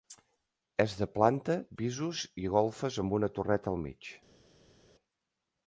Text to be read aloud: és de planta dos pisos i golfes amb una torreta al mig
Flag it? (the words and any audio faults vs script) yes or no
yes